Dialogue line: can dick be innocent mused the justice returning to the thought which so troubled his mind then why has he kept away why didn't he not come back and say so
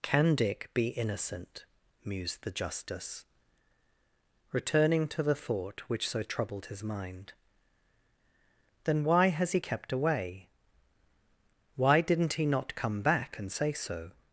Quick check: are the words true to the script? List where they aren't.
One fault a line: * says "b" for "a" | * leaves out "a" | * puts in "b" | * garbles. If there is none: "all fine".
all fine